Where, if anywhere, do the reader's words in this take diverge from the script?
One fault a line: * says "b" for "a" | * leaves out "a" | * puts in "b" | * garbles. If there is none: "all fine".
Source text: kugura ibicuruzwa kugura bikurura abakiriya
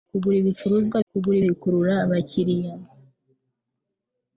all fine